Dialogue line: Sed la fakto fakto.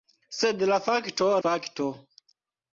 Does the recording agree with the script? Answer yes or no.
yes